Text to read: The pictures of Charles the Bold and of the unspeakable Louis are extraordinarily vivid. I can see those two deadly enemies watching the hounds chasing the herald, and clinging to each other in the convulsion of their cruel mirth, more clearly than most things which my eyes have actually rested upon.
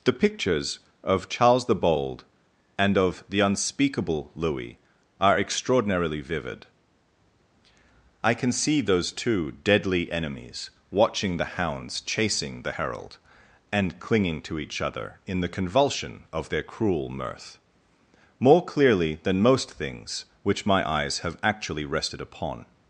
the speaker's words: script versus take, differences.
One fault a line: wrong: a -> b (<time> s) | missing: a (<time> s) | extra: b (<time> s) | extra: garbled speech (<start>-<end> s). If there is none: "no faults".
no faults